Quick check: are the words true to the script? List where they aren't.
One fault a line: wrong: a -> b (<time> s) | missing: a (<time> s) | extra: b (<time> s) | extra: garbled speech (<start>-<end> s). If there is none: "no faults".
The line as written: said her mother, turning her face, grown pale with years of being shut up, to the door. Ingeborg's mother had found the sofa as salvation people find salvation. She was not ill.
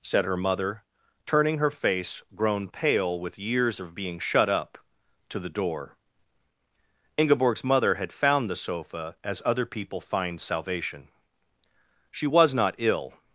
wrong: salvation -> other (9.4 s)